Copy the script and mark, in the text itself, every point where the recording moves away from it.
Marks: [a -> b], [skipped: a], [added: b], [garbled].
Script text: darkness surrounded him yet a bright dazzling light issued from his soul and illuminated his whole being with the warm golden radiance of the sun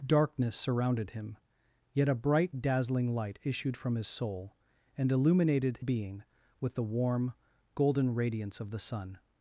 darkness surrounded him yet a bright dazzling light issued from his soul and illuminated [skipped: his whole] being with the warm golden radiance of the sun